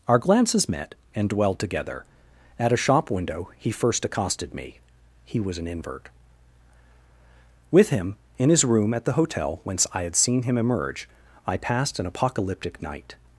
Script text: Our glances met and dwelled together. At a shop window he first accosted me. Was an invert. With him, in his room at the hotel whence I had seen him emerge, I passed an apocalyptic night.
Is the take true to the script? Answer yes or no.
no